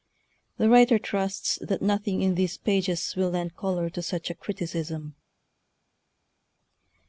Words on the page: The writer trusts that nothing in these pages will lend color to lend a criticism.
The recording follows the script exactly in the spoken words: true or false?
false